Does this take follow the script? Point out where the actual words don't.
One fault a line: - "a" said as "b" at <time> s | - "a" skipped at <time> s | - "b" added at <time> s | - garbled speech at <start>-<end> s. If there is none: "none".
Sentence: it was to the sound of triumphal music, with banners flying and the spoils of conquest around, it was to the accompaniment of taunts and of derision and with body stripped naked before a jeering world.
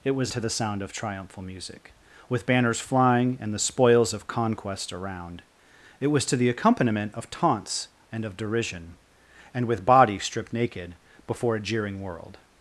none